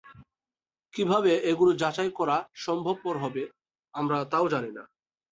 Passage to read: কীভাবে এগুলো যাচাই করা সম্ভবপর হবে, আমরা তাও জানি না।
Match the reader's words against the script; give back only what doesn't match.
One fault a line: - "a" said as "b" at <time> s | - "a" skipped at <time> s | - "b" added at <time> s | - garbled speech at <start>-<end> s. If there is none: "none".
none